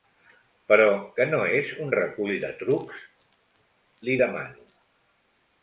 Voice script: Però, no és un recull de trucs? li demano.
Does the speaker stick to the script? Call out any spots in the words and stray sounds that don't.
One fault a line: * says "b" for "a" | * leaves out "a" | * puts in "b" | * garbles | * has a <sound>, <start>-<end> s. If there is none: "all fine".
* puts in "que"